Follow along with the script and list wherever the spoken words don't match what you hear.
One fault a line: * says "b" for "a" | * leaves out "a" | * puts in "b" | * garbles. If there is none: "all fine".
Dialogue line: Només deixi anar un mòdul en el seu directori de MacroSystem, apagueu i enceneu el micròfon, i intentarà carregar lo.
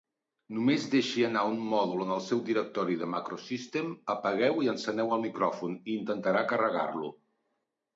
all fine